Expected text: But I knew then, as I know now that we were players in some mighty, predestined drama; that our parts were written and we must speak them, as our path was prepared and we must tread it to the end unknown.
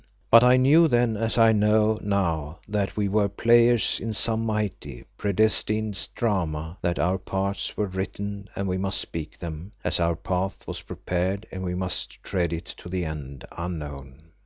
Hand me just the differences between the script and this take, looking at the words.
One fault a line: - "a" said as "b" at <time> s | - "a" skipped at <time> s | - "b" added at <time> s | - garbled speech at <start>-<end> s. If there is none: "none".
none